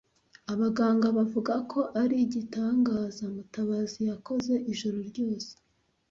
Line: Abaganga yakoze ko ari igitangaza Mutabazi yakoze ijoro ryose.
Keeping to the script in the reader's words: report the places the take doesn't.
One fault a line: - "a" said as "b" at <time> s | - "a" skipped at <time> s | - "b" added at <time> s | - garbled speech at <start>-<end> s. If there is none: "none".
- "yakoze" said as "bavuga" at 1.2 s